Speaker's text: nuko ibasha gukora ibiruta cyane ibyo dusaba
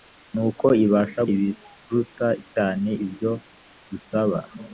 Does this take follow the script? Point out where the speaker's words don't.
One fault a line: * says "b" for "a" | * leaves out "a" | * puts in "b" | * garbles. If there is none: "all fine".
* leaves out "gukora"